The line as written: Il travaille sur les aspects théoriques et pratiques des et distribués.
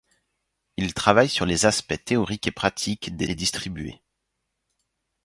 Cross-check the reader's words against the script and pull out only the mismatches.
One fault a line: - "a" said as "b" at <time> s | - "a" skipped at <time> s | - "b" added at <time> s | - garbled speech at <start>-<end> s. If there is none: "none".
none